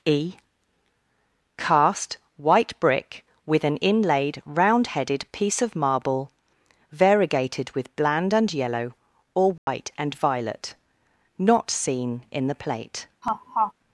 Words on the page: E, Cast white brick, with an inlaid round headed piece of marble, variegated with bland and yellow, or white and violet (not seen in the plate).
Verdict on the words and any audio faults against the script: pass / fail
fail